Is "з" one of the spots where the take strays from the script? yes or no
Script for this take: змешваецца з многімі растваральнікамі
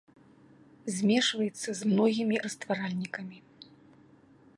no